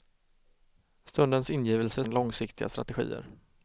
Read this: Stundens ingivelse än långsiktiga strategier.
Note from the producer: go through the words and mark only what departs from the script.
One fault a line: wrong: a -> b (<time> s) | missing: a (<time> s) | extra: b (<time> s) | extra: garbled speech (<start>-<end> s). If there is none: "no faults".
no faults